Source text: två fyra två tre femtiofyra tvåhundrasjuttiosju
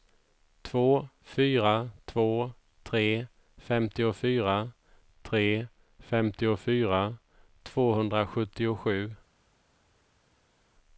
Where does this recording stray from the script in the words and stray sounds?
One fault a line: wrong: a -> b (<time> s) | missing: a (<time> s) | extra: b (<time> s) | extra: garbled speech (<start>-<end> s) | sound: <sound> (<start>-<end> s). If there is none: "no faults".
extra: tre femtiofyra (5.2 s)